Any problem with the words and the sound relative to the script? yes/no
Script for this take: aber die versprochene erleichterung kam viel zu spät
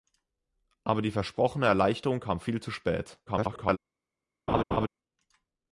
yes